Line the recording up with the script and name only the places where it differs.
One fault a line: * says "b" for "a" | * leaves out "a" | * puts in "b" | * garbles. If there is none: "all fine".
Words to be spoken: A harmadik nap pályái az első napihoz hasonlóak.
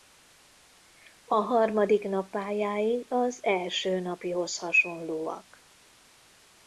all fine